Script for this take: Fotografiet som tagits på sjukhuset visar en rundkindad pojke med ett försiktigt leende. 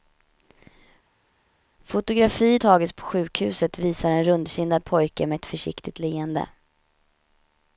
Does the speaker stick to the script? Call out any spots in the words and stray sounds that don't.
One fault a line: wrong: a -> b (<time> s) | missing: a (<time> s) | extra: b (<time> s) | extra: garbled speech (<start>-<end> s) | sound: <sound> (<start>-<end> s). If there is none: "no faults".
missing: som (2.6 s)